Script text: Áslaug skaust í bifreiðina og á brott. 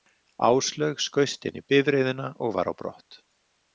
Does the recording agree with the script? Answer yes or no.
no